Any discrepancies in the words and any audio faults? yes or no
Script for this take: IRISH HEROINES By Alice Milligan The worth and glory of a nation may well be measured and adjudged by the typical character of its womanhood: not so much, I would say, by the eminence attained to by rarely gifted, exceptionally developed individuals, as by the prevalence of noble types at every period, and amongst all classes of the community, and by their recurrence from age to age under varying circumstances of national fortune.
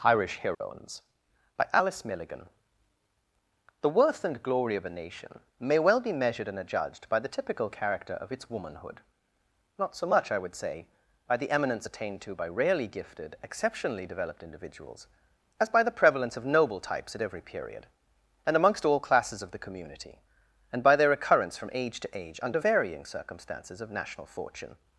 yes